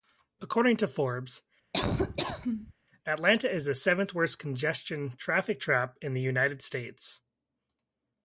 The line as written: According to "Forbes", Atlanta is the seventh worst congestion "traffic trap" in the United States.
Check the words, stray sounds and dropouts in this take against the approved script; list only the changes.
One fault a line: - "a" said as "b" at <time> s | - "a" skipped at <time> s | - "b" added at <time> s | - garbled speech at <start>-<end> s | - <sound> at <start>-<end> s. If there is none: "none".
- laugh at 1.7-2.7 s